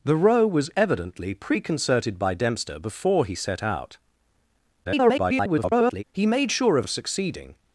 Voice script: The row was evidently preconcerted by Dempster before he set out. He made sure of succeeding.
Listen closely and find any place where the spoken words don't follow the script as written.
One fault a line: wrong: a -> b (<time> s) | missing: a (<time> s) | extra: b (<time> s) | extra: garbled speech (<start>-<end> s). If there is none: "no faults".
extra: garbled speech (4.8-6.0 s)
extra: of (6.8 s)